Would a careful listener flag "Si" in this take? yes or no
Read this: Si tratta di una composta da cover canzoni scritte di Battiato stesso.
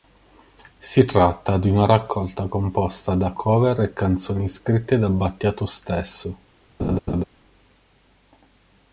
no